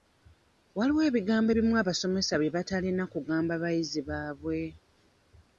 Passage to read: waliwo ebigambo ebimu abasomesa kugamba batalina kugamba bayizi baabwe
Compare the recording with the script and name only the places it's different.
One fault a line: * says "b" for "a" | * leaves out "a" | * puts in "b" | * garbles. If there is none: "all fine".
* says "bye" for "kugamba"